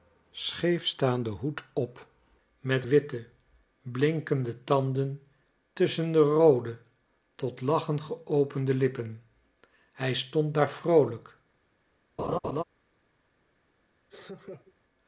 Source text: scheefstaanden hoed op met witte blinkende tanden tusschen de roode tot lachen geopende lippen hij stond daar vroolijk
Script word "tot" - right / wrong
right